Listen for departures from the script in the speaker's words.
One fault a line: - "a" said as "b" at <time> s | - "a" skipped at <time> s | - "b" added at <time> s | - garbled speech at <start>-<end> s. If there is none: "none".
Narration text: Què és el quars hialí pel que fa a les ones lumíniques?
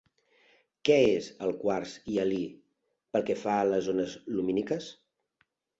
none